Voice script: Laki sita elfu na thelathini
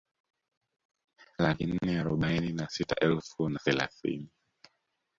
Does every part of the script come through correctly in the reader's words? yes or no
no